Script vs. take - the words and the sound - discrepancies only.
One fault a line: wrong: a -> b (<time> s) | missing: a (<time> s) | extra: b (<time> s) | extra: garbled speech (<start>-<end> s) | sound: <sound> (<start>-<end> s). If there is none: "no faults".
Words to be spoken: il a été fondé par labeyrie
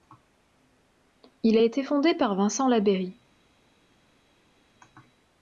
extra: vincent (2.3 s)